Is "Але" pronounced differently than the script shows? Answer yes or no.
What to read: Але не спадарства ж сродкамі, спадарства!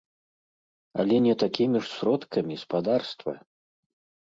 no